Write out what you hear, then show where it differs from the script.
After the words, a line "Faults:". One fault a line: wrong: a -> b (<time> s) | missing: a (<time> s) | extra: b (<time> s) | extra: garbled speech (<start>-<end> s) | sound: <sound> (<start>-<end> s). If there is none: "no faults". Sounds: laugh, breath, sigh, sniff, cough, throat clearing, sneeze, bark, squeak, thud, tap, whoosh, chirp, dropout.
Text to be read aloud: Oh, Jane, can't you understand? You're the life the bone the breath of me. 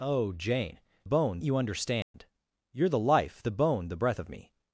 Oh, Jane, bone you understand? You're the life the bone the breath of me.
Faults:
wrong: can't -> bone (1.0 s)
sound: dropout (2.0-2.1 s)